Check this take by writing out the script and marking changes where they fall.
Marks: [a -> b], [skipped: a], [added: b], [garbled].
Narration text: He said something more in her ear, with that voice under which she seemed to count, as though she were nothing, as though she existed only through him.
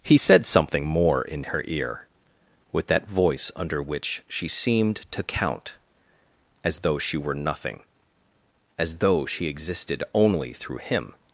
He said something more in her ear, with that voice under which she seemed to count, as though she were nothing, as though she existed only through him.